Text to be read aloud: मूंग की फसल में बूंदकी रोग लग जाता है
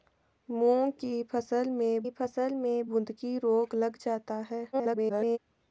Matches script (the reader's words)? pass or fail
fail